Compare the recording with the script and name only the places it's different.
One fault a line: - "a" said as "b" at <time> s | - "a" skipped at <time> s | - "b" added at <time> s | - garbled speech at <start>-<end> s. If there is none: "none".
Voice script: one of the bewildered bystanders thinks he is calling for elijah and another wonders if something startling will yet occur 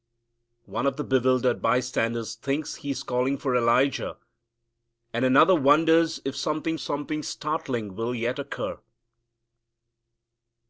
- "something" added at 6.8 s